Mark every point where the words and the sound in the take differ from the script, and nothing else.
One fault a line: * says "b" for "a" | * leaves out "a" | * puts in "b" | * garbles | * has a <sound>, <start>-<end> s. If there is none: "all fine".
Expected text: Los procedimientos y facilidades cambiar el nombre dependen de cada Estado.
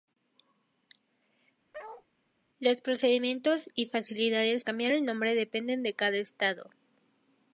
* has a bark, 1.7-2.1 s